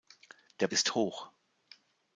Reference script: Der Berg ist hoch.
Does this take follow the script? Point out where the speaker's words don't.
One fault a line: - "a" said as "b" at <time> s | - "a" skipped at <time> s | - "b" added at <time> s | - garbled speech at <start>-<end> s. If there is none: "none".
- "Berg" skipped at 0.7 s